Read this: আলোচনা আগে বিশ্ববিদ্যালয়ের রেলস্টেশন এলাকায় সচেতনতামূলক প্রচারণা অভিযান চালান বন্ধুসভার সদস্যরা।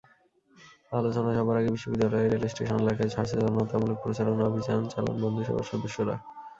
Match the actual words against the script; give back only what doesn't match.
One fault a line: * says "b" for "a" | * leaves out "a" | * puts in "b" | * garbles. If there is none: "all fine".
* puts in "সভার"